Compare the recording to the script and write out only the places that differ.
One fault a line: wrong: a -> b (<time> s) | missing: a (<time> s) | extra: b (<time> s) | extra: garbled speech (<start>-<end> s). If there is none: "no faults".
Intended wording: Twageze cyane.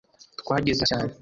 no faults